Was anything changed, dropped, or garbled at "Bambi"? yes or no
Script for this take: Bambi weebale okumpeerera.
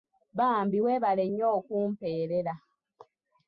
no